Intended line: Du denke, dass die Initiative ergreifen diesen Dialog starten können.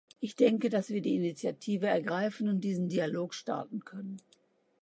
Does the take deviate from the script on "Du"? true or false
true